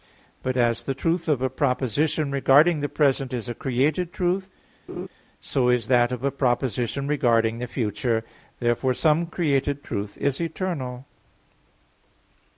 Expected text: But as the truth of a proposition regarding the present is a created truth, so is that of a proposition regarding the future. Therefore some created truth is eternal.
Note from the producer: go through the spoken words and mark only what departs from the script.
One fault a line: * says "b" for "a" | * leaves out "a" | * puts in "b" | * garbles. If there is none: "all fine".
all fine